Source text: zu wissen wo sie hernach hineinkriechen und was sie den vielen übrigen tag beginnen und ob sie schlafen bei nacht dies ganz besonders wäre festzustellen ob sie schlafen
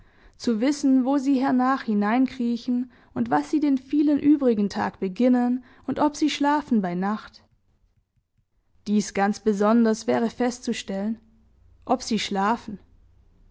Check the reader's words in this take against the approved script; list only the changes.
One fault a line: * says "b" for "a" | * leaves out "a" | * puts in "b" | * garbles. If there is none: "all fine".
all fine